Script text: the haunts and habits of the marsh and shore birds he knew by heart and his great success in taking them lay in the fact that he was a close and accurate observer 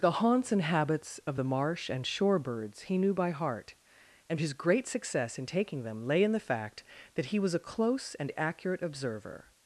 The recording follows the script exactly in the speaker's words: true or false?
true